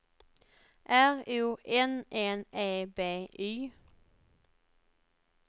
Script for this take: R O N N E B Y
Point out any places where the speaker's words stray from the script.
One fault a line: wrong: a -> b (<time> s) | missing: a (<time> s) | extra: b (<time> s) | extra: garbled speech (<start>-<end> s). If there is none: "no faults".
no faults